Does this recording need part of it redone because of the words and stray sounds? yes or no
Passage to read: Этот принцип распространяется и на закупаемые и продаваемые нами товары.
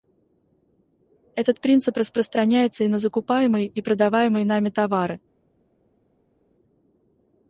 no